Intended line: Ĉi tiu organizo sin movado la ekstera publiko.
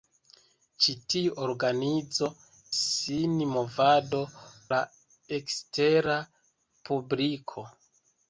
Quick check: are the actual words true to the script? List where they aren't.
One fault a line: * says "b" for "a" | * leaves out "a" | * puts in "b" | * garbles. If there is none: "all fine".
all fine